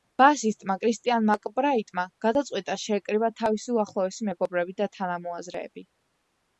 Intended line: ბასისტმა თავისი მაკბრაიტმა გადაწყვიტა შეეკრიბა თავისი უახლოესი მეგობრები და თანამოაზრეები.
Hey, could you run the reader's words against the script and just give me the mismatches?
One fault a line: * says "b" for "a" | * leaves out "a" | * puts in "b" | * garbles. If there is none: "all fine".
* says "კრისტიან" for "თავისი"